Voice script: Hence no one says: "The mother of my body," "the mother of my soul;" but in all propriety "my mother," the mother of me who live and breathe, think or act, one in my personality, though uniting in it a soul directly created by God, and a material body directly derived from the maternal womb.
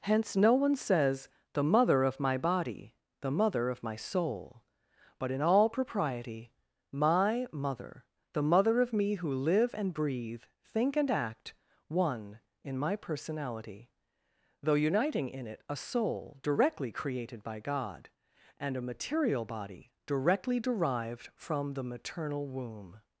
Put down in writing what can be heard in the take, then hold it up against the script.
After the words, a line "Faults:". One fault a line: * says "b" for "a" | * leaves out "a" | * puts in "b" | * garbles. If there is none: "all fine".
Hence no one says: "The mother of my body," "the mother of my soul;" but in all propriety "my mother," the mother of me who live and breathe, think and act, one in my personality, though uniting in it a soul directly created by God, and a material body directly derived from the maternal womb.
Faults:
* says "and" for "or"